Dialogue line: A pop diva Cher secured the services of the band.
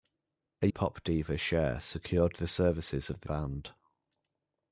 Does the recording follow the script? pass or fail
pass